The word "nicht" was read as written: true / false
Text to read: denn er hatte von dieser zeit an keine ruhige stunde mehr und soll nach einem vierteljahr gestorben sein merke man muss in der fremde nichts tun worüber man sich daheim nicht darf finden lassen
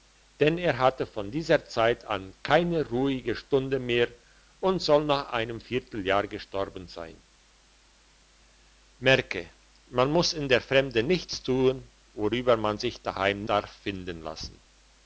false